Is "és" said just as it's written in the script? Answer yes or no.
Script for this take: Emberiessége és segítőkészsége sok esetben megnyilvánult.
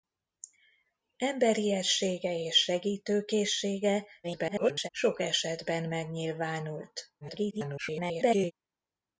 yes